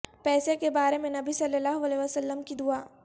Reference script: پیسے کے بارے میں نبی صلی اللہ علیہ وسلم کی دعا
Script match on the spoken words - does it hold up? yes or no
yes